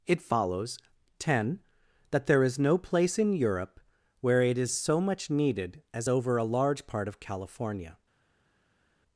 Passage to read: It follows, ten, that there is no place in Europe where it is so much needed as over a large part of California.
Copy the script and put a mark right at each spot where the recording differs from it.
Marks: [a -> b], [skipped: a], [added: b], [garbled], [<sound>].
It follows, ten, that there is no place in Europe where it is so much needed as over a large part of California.